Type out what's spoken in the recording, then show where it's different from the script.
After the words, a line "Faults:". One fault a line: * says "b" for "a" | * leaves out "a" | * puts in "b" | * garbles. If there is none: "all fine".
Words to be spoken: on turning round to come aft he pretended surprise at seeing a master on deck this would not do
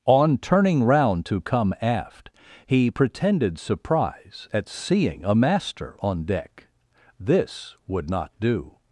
on turning round to come aft he pretended surprise at seeing a master on deck this would not do
Faults:
all fine